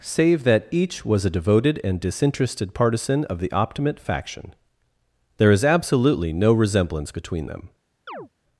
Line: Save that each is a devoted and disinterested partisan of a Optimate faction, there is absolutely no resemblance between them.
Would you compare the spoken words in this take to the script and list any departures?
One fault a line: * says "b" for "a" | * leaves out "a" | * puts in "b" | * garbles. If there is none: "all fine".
* says "was" for "is"
* says "the" for "a"